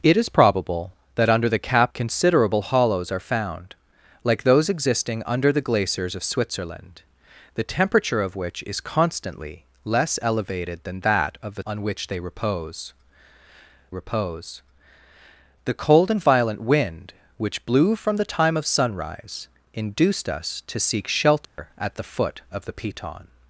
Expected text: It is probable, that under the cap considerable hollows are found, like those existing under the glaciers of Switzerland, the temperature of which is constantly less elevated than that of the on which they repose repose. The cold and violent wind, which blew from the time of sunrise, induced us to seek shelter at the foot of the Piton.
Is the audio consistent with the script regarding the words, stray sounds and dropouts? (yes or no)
no